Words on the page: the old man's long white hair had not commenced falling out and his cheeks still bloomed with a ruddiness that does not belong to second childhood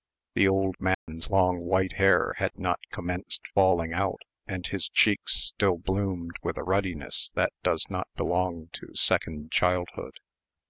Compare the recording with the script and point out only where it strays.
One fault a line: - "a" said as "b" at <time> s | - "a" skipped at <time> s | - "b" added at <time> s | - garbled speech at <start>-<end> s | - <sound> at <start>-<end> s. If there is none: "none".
- dropout at 0.9-1.1 s